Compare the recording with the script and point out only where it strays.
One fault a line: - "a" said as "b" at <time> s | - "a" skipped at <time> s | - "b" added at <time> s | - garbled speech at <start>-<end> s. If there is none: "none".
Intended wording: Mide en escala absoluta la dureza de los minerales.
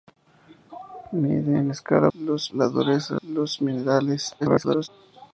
- "absoluta" said as "los" at 2.1 s
- "de" skipped at 3.1 s
- garbled speech at 4.4-4.9 s